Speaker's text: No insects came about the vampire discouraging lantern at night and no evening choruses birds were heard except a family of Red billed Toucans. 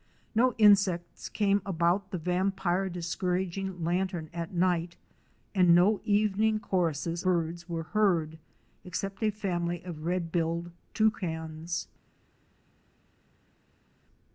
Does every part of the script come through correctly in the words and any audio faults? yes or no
yes